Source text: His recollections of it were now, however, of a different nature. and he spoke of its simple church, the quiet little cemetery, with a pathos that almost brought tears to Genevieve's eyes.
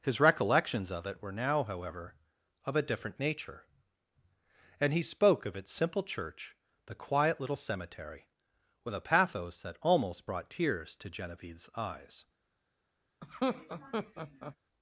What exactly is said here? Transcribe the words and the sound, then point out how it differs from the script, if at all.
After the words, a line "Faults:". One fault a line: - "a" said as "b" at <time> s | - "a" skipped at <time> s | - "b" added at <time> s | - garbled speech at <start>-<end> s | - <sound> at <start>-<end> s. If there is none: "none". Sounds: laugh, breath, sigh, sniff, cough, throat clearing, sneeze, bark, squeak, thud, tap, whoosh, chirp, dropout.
His recollections of it were now, however, of a different nature. and he spoke of its simple church, the quiet little cemetery, with a pathos that almost brought tears to Genevieve's eyes.
Faults:
- laugh at 13.2-14.6 s